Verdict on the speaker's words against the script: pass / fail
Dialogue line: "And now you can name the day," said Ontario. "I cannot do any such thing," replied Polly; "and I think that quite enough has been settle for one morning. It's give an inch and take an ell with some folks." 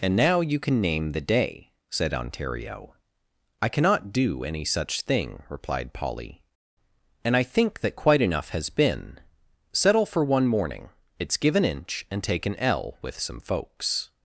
pass